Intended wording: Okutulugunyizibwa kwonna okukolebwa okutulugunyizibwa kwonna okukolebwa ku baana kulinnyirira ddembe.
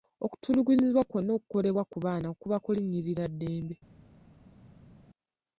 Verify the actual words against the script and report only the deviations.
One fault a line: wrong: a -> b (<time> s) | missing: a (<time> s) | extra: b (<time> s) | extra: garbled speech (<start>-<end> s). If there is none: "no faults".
missing: okutulugunyizibwa kwonna okukolebwa (1.8 s)
extra: kuba (2.4 s)